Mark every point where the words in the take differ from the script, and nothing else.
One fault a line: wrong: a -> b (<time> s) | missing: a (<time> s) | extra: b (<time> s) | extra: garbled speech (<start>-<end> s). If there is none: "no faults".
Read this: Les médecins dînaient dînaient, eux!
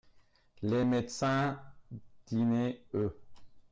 missing: dînaient (2.9 s)